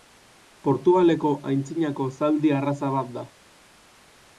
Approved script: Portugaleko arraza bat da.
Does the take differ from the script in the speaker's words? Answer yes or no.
yes